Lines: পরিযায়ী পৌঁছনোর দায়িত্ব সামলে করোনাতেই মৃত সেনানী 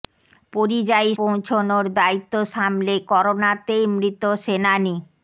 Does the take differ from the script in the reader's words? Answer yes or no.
no